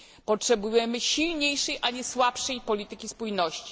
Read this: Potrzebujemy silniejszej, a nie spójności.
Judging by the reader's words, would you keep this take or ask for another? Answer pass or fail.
fail